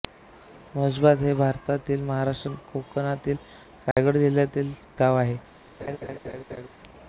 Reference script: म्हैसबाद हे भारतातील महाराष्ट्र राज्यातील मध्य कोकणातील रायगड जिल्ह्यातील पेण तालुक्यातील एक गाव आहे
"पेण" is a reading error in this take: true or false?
true